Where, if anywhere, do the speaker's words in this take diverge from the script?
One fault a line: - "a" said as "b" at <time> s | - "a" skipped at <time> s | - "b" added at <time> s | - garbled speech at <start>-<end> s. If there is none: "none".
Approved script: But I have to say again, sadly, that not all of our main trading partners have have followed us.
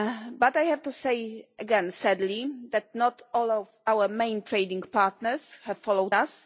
- "have" skipped at 5.8 s